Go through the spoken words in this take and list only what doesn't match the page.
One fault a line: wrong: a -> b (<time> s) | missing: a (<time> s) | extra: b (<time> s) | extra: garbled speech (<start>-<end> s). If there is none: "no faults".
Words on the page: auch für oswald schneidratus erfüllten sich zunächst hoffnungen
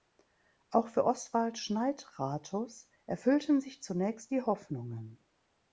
extra: die (4.3 s)